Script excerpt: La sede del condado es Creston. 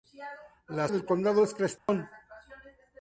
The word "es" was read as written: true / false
true